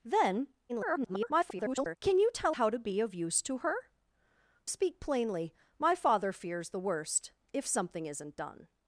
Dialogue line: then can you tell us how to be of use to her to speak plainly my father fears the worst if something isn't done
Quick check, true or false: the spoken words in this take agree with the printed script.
false